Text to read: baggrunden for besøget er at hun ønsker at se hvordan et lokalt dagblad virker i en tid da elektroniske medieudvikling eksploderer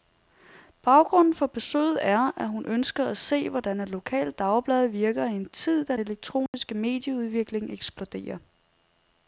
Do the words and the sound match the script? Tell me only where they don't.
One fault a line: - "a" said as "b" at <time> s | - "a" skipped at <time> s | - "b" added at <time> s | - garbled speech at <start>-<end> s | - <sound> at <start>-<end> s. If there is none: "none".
- dropout at 6.5-6.5 s